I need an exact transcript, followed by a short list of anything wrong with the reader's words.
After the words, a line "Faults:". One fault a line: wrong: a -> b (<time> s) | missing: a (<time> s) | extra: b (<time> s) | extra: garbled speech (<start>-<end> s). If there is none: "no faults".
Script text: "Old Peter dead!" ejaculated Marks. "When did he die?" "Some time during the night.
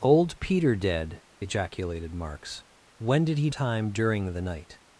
"Old Peter dead!" ejaculated Marks. "When did he time during the night.
Faults:
missing: die Some (3.5 s)